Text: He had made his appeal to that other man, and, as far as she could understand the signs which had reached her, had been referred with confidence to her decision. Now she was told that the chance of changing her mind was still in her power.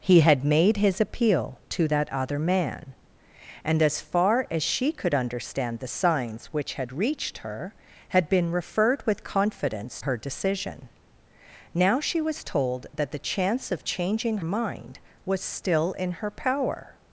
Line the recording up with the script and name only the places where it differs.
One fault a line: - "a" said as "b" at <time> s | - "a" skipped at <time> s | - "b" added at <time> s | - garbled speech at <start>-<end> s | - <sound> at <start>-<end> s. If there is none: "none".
- "to" skipped at 10.0 s
- "her" skipped at 14.4 s